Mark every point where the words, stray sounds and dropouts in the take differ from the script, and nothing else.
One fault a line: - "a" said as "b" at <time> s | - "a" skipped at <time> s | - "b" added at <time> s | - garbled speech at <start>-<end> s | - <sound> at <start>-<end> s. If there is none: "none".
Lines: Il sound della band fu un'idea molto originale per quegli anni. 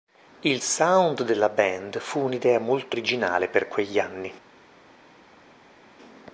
none